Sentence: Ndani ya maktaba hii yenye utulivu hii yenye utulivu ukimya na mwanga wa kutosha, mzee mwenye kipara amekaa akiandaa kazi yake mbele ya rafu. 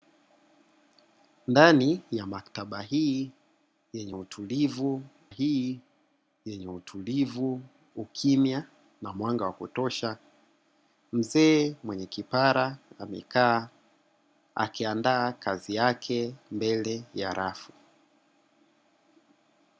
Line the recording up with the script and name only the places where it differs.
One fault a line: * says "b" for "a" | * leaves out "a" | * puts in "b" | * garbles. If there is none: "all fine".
all fine